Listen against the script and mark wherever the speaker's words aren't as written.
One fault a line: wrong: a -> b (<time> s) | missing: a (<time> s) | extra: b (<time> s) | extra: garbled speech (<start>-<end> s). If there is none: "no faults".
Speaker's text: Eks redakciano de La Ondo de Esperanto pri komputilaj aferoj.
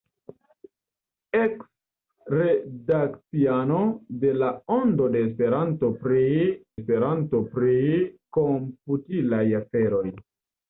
extra: Esperanto pri (6.8 s)